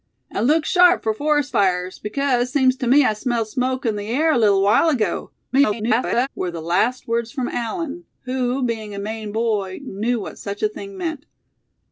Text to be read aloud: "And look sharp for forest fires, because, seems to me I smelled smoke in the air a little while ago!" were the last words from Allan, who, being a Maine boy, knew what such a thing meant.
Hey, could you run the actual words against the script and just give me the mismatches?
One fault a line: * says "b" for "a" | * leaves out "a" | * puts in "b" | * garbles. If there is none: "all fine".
* garbles